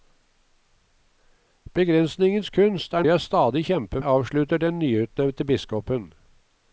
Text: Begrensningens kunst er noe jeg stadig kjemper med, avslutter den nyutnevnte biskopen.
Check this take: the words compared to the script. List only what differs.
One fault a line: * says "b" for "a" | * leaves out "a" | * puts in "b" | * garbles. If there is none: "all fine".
* leaves out "noe"
* leaves out "med"